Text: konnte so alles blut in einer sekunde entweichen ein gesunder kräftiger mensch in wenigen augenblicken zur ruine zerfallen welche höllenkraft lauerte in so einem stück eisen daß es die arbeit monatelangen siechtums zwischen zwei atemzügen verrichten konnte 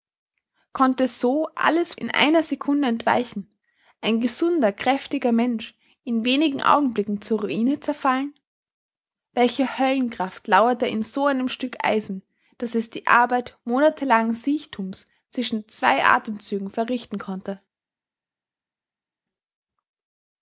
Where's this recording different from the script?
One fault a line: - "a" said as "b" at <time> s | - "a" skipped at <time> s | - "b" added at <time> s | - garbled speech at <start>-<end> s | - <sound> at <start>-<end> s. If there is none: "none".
- "blut" skipped at 1.9 s